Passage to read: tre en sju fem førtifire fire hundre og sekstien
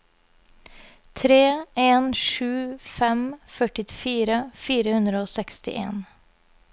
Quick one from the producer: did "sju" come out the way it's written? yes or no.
yes